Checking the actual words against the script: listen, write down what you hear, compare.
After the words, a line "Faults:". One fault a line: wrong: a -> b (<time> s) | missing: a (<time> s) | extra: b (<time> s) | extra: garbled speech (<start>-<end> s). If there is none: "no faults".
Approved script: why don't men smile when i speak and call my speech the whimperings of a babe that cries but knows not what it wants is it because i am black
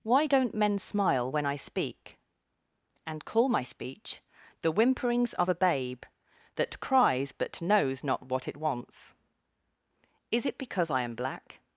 why don't men smile when i speak and call my speech the whimperings of a babe that cries but knows not what it wants is it because i am black
Faults:
no faults